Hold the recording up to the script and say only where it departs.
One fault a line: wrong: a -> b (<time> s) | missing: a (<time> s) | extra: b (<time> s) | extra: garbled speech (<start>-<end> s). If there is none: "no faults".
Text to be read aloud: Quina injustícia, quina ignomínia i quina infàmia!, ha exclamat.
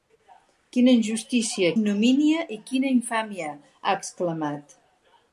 missing: quina (1.7 s)